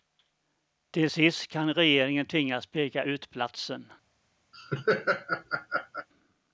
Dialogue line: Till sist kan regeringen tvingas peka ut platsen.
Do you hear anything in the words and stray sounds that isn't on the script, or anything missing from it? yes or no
yes